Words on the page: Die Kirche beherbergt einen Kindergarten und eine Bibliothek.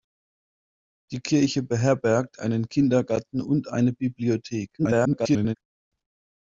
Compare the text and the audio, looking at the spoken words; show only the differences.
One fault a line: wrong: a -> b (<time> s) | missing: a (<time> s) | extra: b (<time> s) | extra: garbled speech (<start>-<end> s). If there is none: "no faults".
extra: garbled speech (4.8-5.6 s)